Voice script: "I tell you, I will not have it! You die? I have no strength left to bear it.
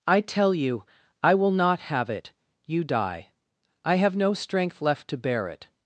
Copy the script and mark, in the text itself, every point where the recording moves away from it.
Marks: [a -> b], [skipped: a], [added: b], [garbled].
"I tell you, I will not have it! You die? I have no strength left to bear it.